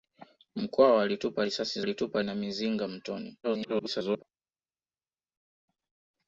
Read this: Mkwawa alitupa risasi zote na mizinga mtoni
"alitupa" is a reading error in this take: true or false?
false